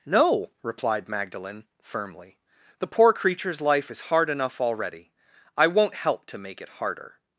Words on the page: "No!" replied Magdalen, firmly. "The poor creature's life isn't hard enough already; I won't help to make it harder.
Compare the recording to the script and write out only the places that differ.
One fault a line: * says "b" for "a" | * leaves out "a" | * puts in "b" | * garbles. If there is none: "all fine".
* says "is" for "isn't"